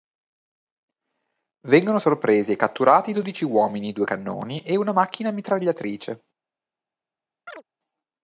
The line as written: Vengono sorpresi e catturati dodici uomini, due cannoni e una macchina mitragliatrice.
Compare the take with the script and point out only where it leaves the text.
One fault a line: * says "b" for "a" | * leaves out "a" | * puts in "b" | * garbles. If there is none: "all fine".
all fine